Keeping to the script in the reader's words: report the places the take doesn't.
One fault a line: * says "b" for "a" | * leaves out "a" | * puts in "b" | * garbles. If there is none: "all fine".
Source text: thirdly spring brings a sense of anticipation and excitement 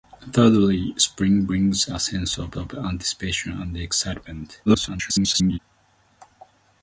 * puts in "of"
* garbles